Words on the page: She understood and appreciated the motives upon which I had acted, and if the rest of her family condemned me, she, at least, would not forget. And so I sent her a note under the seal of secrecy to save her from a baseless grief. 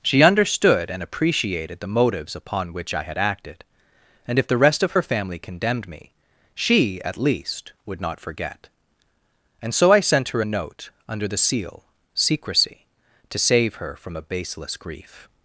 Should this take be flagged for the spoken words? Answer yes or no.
yes